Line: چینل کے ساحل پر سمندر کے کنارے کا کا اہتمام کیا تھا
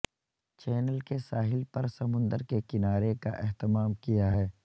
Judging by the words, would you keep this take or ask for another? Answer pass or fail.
fail